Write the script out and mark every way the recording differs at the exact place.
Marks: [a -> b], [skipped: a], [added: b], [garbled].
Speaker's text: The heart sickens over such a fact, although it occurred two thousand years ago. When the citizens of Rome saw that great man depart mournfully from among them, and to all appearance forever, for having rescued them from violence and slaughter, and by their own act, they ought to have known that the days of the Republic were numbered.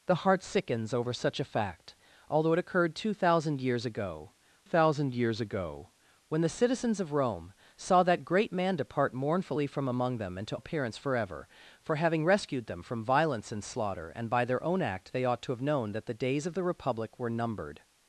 The heart sickens over such a fact, although it occurred two thousand years ago. [added: thousand years ago] When the citizens of Rome saw that great man depart mournfully from among them, and to [skipped: all] appearance forever, for having rescued them from violence and slaughter, and by their own act, they ought to have known that the days of the Republic were numbered.